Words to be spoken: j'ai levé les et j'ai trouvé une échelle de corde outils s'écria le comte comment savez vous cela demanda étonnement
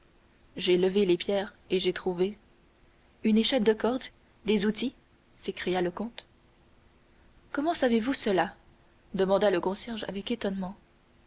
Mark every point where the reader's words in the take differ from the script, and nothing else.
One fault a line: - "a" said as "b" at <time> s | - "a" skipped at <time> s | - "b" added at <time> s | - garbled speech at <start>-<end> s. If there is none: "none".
- "pierres" added at 1.1 s
- "des" added at 4.4 s
- "le concierge avec" added at 9.5 s